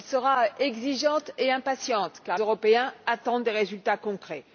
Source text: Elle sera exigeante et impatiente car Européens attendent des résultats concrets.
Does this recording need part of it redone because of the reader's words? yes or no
no